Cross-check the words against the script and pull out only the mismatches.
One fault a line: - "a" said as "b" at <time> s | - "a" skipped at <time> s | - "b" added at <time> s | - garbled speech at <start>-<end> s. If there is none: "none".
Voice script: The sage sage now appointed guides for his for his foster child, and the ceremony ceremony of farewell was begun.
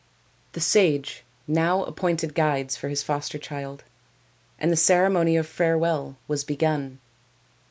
- "sage" skipped at 1.3 s
- "for his" skipped at 3.0 s
- "ceremony" skipped at 5.4 s